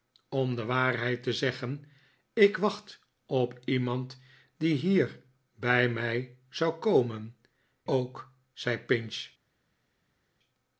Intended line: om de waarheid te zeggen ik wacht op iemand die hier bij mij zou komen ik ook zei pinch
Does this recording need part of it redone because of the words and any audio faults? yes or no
yes